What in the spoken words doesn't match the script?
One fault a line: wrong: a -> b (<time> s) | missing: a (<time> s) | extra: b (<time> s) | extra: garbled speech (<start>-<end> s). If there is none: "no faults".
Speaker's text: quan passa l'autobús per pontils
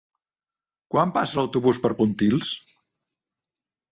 no faults